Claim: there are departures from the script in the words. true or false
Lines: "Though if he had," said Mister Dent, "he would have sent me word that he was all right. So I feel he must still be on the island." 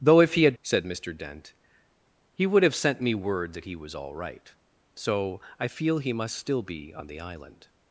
false